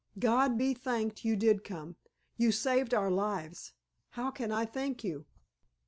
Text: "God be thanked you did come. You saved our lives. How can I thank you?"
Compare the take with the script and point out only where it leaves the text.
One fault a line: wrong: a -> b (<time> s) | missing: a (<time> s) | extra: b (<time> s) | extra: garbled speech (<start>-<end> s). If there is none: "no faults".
no faults